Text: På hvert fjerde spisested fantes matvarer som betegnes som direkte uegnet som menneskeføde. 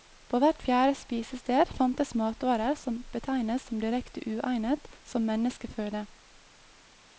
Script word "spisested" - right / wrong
right